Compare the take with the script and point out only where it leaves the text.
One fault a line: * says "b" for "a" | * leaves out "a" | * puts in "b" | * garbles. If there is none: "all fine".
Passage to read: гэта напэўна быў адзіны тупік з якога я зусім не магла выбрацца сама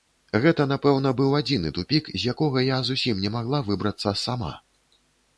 all fine